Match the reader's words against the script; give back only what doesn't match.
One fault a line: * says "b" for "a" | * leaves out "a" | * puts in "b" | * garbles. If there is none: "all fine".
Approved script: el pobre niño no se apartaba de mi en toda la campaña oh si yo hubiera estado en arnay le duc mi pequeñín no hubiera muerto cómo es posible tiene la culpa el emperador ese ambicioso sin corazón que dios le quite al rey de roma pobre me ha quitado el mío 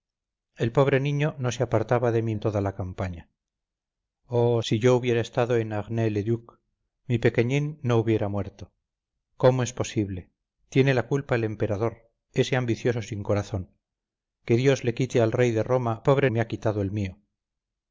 all fine